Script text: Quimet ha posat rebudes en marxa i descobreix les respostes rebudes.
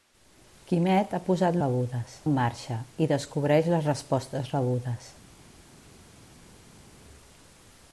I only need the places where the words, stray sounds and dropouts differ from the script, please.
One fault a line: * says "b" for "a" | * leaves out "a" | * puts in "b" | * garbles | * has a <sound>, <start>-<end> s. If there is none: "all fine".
all fine